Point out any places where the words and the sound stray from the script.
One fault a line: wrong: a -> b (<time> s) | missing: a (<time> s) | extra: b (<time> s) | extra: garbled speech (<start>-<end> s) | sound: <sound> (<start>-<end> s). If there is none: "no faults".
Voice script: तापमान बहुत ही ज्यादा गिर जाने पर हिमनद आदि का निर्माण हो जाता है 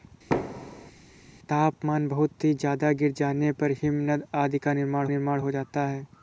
sound: thud (0.3-0.9 s)
extra: निर्माण (5.1 s)